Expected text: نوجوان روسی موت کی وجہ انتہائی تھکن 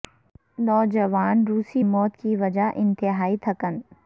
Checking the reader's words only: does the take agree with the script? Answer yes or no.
yes